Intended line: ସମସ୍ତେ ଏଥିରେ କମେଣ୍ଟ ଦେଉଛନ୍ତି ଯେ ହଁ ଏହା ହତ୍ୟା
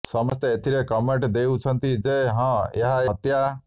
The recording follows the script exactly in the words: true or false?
true